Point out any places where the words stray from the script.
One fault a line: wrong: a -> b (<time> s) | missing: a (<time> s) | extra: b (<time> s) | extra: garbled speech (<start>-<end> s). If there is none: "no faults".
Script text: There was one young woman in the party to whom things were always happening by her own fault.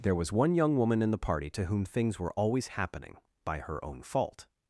no faults